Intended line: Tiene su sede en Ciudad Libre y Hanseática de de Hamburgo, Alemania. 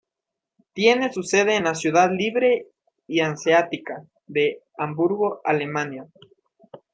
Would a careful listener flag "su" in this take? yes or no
no